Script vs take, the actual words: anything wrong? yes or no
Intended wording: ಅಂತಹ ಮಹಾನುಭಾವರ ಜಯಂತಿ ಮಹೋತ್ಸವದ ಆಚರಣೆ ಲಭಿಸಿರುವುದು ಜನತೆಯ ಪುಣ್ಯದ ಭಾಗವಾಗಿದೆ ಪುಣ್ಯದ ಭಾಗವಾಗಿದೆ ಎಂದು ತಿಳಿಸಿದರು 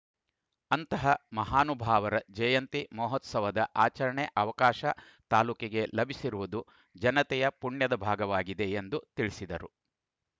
yes